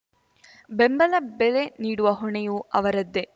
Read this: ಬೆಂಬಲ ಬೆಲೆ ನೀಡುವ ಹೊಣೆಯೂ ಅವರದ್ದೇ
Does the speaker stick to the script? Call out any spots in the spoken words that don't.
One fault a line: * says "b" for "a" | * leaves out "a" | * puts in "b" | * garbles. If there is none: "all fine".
all fine